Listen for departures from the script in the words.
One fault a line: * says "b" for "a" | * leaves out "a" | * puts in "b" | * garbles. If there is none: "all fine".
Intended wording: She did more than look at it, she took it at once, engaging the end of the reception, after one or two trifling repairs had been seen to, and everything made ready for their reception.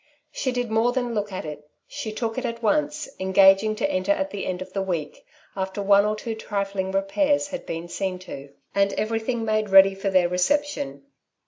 * puts in "to enter at"
* says "week" for "reception"